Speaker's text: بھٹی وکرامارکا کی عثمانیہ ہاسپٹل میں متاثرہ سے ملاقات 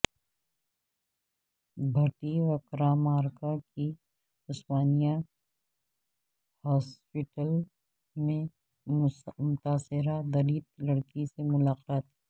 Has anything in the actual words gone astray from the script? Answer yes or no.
yes